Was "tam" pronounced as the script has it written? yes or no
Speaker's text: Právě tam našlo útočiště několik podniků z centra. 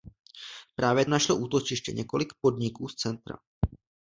no